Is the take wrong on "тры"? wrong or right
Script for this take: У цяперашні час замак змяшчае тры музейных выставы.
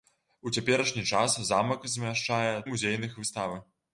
wrong